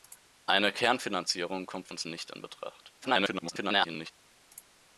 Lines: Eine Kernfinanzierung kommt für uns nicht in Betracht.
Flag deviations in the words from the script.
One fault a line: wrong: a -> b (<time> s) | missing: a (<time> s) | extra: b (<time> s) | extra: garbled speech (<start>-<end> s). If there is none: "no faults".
missing: für (1.9 s)
extra: garbled speech (3.0-4.1 s)